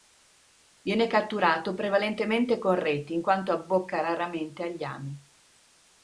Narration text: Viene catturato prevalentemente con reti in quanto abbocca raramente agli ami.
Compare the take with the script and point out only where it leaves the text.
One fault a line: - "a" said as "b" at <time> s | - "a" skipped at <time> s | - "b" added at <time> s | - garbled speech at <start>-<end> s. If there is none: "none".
none